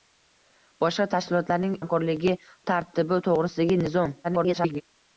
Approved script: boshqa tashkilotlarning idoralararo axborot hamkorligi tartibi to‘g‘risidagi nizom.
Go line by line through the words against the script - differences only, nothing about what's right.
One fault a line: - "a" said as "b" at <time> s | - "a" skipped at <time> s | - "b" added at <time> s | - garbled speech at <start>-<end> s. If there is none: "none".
- "idoralararo axborot" skipped at 1.8 s
- garbled speech at 4.2-4.8 s